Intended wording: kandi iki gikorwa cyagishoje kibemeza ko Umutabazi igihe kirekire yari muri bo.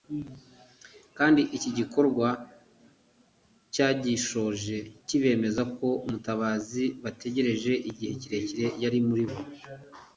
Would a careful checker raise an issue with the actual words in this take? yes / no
yes